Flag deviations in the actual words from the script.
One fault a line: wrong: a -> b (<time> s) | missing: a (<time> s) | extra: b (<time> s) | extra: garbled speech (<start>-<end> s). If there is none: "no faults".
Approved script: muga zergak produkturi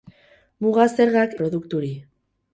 no faults